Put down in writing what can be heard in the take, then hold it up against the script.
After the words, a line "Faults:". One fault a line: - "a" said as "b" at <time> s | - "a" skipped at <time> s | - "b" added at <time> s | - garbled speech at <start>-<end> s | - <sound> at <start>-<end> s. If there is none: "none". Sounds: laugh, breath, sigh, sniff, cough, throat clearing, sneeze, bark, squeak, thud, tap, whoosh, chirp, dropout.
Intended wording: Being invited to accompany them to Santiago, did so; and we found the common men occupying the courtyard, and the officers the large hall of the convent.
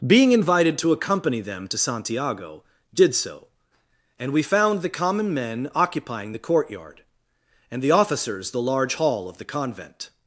Being invited to accompany them to Santiago, did so; and we found the common men occupying the courtyard, and the officers the large hall of the convent.
Faults:
none